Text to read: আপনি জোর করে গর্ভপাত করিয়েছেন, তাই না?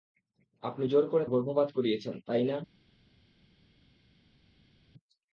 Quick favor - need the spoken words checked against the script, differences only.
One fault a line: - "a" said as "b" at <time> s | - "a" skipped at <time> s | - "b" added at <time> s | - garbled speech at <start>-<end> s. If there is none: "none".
none